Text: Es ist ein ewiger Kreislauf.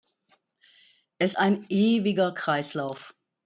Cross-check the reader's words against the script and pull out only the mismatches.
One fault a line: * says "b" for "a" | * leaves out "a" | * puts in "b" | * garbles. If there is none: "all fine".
* leaves out "ist"